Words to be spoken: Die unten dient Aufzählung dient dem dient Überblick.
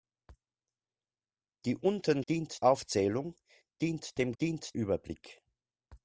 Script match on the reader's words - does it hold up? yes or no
yes